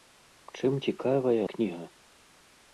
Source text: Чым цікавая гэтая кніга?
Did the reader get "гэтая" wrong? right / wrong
wrong